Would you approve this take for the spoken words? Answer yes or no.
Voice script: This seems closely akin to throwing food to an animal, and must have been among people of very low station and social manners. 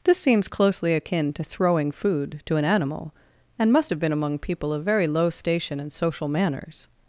yes